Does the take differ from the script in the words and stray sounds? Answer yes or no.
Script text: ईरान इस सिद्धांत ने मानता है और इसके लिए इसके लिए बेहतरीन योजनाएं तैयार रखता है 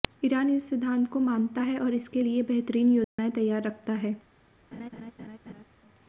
yes